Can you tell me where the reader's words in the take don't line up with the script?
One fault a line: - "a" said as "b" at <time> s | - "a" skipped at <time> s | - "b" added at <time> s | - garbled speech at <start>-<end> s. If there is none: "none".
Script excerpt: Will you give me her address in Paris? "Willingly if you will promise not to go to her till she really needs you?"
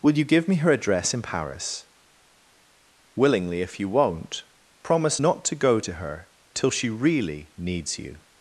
- "will" said as "won't" at 3.9 s